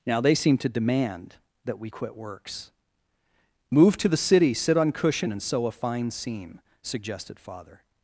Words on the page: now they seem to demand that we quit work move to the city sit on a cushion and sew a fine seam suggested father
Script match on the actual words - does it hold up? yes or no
no